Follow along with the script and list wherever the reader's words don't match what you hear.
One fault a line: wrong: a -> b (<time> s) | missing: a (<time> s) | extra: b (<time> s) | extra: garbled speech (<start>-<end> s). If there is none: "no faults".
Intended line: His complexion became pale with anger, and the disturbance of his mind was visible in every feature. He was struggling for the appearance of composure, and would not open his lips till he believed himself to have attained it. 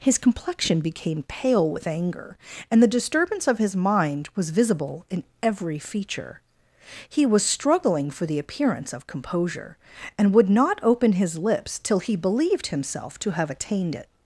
no faults